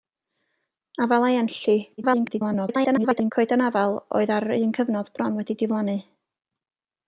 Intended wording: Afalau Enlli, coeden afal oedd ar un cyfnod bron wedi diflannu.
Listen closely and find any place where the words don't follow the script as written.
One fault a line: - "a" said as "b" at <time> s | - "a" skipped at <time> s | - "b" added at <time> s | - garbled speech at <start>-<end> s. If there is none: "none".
- garbled speech at 2.0-3.3 s